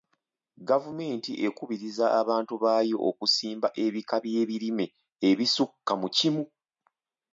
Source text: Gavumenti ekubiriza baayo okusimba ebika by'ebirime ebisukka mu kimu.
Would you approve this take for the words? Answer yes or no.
no